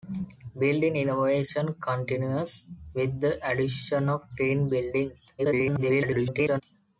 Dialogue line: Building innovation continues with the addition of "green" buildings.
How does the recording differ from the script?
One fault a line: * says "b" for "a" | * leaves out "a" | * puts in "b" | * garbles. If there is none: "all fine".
* garbles